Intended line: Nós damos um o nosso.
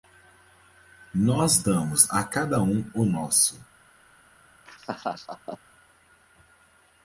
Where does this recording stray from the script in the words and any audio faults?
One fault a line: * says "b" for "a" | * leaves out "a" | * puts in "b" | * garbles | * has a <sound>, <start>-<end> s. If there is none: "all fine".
* puts in "a cada"
* has a laugh, 4.7-5.6 s